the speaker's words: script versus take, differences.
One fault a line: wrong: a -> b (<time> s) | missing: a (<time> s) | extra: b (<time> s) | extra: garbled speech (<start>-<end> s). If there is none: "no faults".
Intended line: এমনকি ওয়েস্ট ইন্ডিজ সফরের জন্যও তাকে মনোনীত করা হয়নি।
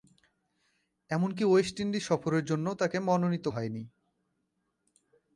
missing: করা (3.5 s)